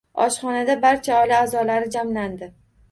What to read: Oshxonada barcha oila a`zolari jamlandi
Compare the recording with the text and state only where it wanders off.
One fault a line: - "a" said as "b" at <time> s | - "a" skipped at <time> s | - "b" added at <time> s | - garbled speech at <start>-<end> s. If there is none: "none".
none